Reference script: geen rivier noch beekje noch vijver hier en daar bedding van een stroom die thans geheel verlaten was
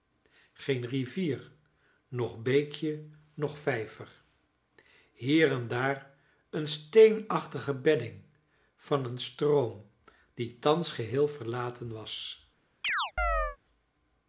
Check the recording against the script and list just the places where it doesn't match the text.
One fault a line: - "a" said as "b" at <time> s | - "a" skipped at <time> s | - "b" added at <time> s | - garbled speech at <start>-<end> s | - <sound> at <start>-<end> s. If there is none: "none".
- "een steenachtige" added at 6.5 s
- chirp at 12.8-13.6 s